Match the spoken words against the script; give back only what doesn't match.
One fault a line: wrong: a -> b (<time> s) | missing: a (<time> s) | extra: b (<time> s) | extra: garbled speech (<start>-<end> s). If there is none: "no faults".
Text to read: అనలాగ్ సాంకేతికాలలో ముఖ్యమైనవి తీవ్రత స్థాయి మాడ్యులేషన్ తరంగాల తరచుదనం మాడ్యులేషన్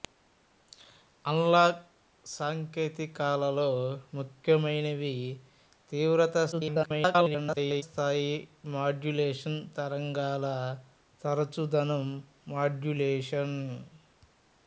extra: garbled speech (6.5-7.8 s)